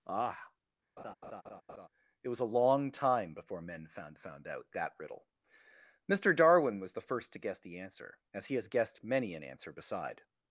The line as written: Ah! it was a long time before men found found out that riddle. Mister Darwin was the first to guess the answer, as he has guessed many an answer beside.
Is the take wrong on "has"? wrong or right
right